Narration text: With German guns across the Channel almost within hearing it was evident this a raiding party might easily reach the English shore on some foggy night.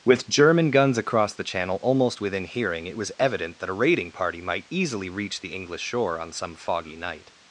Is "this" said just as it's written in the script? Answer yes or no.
no